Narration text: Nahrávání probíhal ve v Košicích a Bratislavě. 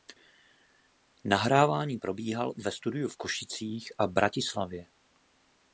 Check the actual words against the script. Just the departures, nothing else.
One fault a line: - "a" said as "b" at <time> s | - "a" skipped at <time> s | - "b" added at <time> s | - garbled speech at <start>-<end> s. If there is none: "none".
- "studiu" added at 2.7 s